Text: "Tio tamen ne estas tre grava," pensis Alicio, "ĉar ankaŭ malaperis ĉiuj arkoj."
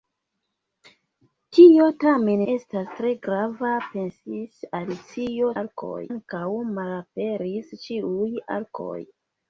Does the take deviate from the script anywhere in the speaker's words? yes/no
yes